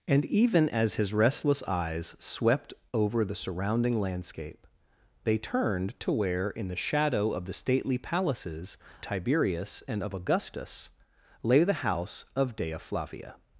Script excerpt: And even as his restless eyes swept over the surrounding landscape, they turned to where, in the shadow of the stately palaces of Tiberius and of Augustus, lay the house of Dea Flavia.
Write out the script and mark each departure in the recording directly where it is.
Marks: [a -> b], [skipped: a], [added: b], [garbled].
And even as his restless eyes swept over the surrounding landscape, they turned to where, in the shadow of the stately palaces [skipped: of] Tiberius and of Augustus, lay the house of Dea Flavia.